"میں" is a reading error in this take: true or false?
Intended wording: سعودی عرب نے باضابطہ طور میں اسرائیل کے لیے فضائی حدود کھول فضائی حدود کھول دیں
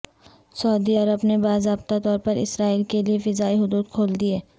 true